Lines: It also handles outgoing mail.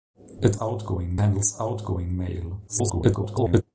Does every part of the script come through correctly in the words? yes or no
no